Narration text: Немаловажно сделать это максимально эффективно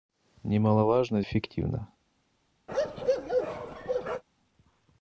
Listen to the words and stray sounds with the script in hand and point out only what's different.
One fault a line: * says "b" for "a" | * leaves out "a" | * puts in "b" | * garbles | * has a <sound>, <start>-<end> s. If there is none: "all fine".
* leaves out "сделать это максимально"
* has a bark, 2.7-4.2 s